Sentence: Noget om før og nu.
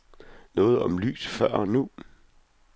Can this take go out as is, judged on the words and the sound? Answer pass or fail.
fail